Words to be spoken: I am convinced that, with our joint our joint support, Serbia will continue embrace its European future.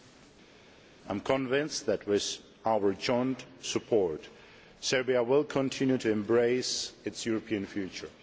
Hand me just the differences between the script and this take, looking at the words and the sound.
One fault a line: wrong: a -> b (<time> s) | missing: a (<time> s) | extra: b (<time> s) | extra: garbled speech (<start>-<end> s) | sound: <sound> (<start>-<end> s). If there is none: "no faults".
missing: our joint (3.5 s)
extra: to (6.0 s)